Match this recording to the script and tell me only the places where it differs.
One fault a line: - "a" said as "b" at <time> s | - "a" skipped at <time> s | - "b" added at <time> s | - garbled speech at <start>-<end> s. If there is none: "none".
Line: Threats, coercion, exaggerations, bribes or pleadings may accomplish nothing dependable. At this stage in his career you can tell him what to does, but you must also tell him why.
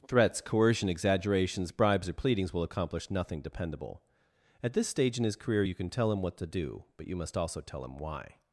- "may" said as "will" at 2.5 s
- "does" said as "do" at 6.5 s